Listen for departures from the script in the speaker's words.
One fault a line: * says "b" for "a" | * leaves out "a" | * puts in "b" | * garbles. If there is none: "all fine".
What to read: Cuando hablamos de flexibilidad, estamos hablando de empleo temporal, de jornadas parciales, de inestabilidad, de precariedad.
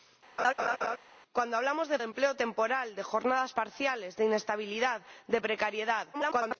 * leaves out "flexibilidad estamos hablando"
* garbles